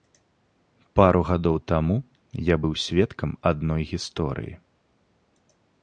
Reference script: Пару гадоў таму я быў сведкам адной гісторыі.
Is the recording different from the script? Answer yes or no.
no